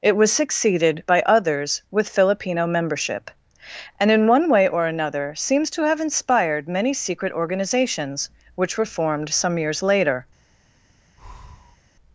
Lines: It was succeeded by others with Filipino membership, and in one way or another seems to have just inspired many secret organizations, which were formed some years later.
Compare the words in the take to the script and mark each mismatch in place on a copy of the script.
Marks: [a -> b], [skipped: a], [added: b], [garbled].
It was succeeded by others with Filipino membership, and in one way or another seems to have [skipped: just] inspired many secret organizations, which were formed some years later.